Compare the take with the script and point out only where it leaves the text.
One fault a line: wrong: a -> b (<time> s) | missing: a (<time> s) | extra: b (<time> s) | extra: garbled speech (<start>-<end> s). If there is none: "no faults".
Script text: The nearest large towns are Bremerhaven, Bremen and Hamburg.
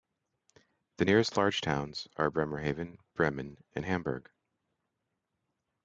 no faults